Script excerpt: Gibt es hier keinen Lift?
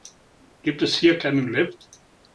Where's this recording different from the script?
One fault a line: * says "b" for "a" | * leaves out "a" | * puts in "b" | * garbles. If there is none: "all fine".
all fine